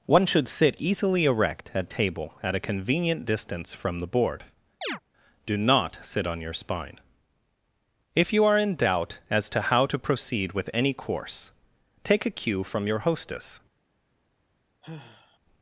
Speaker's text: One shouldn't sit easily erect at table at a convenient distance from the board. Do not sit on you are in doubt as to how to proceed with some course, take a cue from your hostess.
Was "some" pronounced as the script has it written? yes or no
no